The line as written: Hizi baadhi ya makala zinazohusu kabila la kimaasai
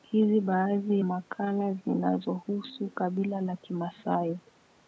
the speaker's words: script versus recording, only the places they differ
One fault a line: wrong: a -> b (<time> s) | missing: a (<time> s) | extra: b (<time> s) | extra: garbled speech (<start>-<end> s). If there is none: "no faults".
missing: ya (1.0 s)